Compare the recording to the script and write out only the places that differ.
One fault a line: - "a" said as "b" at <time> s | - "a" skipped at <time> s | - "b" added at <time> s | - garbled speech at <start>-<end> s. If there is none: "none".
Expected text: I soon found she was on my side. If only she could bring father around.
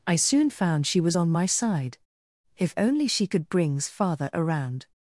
- "bring" said as "brings" at 3.5 s